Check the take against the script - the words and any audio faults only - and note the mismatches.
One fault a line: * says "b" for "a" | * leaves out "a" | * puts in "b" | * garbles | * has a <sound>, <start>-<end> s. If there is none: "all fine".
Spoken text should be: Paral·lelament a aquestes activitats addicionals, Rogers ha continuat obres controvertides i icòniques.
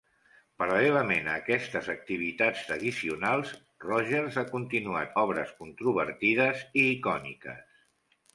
all fine